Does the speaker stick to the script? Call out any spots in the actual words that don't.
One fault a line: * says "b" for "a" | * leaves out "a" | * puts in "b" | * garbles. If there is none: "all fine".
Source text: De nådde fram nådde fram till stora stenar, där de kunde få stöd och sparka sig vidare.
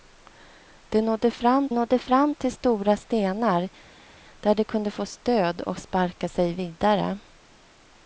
all fine